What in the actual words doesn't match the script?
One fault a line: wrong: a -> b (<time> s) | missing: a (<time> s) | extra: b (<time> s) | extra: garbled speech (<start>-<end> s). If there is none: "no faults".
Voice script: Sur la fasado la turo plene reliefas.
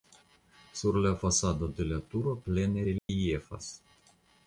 no faults